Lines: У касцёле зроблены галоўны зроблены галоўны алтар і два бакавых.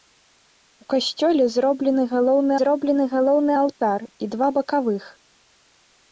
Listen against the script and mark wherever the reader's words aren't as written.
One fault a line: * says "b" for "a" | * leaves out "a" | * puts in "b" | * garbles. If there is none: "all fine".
all fine